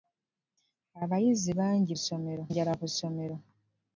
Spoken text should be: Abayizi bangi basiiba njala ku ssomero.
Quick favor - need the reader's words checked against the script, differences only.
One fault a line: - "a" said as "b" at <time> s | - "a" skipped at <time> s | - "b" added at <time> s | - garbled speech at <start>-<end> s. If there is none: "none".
- "basiiba" said as "ssomero" at 2.0 s